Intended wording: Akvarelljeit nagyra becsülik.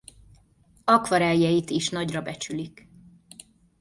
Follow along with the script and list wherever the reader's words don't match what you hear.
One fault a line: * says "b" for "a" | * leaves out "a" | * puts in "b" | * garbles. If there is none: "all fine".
* puts in "is"